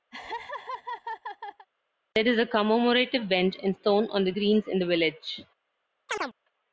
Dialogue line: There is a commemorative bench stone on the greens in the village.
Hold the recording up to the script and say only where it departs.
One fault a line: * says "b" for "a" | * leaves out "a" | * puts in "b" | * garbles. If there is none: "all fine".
* puts in "and"